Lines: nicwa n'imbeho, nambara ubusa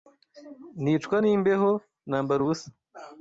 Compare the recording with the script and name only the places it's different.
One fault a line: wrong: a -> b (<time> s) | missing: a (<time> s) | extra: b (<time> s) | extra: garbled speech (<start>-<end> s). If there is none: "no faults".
no faults